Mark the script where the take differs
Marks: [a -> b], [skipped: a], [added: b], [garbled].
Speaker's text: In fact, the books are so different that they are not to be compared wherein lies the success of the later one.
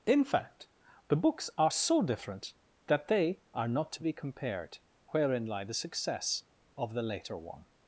In fact, the books are so different that they are not to be compared wherein [lies -> lie] the success of the later one.